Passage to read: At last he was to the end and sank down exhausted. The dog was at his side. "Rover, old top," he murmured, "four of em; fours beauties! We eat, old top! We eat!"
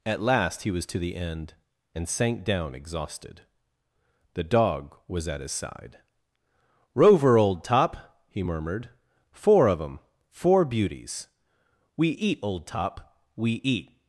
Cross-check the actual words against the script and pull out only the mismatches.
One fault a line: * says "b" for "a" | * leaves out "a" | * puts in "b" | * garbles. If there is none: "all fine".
* says "four" for "fours"